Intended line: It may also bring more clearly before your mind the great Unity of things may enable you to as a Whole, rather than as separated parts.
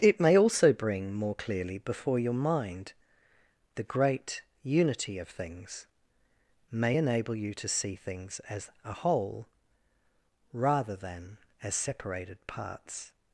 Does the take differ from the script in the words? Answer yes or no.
yes